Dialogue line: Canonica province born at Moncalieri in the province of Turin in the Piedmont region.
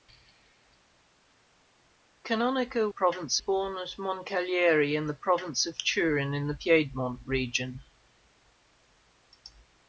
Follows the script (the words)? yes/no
yes